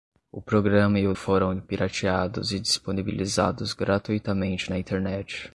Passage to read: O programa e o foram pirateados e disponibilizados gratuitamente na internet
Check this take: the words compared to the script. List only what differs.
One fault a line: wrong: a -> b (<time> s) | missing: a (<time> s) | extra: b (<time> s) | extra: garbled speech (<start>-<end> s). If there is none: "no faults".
no faults